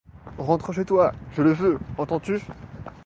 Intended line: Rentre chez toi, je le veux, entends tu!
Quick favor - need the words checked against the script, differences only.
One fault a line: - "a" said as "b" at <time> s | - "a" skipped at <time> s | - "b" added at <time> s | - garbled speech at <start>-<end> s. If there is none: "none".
none